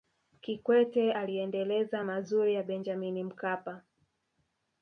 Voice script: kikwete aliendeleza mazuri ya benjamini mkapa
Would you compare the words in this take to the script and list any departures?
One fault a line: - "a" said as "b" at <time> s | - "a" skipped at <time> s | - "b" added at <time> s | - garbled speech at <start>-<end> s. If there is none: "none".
none